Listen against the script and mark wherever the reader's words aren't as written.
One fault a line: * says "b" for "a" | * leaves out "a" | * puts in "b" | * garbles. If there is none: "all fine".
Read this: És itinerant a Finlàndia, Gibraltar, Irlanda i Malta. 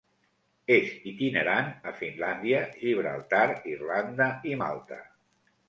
all fine